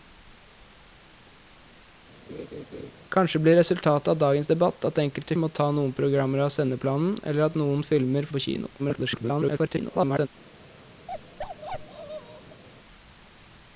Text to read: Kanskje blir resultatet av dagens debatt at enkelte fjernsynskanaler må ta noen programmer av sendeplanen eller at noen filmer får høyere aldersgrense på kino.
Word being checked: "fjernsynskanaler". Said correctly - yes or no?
no